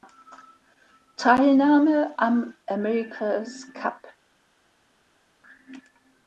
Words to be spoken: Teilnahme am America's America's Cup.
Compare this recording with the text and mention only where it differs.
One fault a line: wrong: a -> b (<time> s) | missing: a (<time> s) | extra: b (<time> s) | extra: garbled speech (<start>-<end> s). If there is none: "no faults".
missing: America's (3.7 s)